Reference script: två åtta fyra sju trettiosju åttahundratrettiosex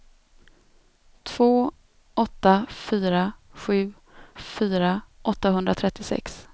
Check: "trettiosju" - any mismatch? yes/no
yes